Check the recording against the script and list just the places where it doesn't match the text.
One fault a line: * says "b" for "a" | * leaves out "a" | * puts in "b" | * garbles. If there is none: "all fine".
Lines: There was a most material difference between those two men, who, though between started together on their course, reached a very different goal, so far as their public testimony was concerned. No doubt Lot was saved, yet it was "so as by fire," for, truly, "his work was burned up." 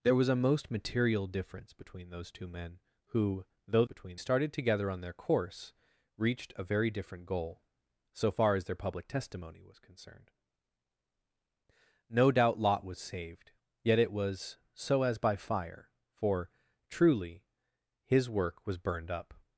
all fine